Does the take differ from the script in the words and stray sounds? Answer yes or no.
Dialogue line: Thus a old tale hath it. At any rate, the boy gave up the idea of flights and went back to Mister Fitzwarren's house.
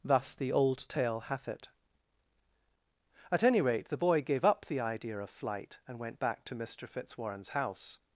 yes